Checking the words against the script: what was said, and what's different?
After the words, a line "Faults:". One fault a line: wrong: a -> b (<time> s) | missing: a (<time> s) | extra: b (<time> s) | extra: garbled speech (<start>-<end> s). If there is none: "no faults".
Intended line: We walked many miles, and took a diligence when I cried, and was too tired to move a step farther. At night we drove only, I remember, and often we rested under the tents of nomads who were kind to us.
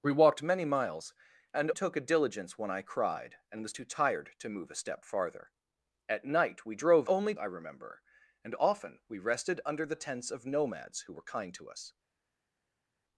We walked many miles, and took a diligence when I cried, and was too tired to move a step farther. At night we drove only, I remember, and often we rested under the tents of nomads who were kind to us.
Faults:
no faults